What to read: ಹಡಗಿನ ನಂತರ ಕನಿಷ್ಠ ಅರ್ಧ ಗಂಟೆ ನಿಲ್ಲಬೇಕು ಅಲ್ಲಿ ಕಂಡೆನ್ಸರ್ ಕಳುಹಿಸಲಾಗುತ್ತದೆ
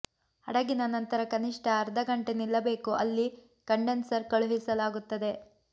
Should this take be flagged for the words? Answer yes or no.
no